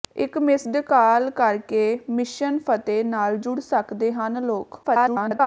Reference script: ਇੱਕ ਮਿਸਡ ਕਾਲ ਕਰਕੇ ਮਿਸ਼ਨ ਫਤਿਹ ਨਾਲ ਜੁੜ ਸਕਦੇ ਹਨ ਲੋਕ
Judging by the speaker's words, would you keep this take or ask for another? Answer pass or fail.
fail